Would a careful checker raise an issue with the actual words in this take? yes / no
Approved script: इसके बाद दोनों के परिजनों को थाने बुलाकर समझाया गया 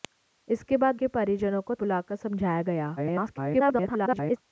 yes